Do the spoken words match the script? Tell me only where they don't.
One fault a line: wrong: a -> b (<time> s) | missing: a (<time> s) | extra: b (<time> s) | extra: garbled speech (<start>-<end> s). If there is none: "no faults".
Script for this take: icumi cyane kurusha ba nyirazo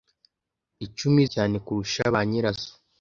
no faults